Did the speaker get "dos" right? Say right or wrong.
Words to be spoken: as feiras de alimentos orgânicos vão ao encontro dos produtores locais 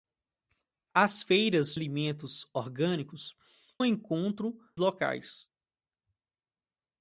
wrong